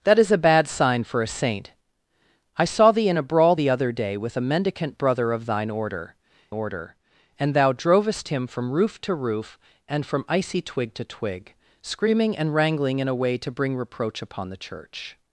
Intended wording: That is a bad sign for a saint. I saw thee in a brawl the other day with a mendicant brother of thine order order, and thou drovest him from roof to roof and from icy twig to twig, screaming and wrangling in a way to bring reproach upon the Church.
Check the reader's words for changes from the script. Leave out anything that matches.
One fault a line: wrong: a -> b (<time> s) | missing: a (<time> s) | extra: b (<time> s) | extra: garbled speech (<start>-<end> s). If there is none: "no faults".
no faults